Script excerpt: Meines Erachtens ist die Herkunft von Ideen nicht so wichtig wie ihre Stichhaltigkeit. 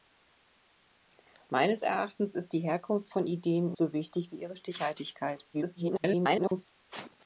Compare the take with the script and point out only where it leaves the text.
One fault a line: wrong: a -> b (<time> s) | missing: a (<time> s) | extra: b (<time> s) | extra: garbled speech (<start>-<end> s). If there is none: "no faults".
missing: nicht (3.8 s)
extra: garbled speech (5.5-6.7 s)